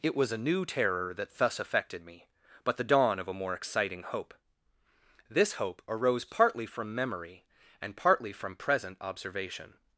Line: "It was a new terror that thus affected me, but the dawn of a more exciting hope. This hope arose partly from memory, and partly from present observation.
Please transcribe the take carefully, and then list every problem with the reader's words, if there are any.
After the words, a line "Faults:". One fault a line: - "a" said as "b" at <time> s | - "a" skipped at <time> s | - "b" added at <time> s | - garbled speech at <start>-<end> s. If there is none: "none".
"It was a new terror that thus affected me, but the dawn of a more exciting hope. This hope arose partly from memory, and partly from present observation.
Faults:
none